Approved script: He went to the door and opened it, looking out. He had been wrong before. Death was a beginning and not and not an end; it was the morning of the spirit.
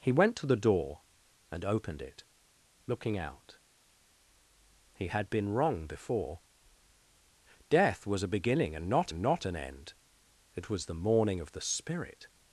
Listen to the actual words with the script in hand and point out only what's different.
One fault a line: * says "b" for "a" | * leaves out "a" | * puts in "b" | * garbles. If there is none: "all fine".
all fine